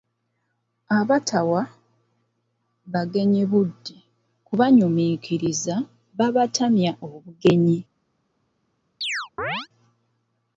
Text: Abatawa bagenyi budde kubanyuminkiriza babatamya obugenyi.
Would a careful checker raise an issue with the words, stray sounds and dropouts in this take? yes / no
yes